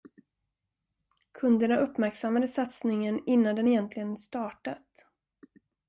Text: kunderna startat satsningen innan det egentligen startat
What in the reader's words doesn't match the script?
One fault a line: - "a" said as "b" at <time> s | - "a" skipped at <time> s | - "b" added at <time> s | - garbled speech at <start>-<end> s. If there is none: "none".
- "startat" said as "uppmärksammade" at 1.8 s
- "det" said as "den" at 3.5 s